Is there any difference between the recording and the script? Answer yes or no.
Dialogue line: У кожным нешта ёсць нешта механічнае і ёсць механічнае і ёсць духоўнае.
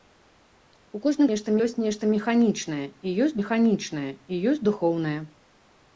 no